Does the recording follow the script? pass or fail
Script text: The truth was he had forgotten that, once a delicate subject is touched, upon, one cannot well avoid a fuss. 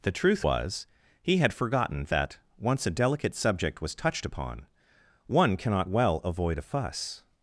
fail